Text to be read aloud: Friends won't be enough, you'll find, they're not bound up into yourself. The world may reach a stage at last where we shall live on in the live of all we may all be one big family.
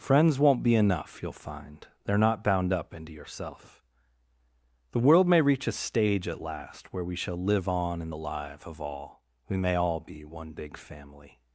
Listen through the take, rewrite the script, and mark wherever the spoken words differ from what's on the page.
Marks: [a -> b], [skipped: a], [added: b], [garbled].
Friends won't be enough, you'll find, they're not bound up into yourself. The world may reach a stage at last where we shall live on in the live of all we may all be one big family.